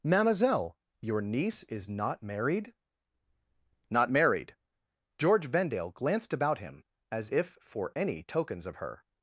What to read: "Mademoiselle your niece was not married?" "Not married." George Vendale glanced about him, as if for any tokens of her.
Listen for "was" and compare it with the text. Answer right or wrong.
wrong